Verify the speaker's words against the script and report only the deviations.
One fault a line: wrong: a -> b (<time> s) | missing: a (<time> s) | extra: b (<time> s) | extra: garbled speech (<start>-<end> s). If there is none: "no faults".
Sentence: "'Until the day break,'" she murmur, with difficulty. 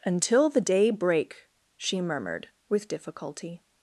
wrong: murmur -> murmured (2.0 s)